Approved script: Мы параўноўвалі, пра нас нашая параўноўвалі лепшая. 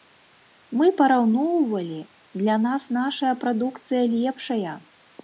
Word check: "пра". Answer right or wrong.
wrong